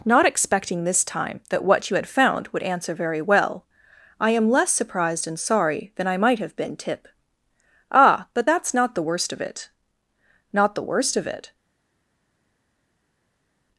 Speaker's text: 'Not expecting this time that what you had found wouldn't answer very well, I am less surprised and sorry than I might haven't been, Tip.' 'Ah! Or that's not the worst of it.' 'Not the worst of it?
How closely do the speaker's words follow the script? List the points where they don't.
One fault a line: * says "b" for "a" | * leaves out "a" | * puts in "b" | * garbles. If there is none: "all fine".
* says "would" for "wouldn't"
* says "have" for "haven't"
* says "But" for "Or"